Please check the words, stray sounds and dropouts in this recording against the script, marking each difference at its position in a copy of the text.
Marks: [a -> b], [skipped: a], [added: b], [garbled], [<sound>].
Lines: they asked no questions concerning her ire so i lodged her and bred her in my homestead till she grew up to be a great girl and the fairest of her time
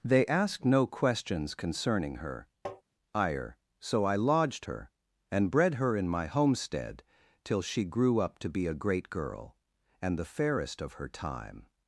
they asked no questions concerning her [tap] ire so i lodged her and bred her in my homestead till she grew up to be a great girl and the fairest of her time